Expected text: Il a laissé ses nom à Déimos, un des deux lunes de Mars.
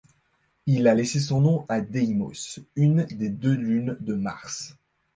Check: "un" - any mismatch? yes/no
yes